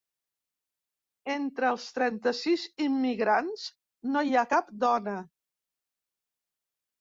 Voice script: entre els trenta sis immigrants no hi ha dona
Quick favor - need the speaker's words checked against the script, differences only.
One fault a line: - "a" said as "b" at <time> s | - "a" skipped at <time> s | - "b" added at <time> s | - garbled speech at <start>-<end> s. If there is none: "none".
- "cap" added at 4.5 s